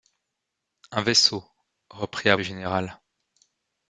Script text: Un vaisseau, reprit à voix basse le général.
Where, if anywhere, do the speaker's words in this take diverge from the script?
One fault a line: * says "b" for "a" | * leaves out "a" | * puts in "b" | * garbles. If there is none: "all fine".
* leaves out "voix basse"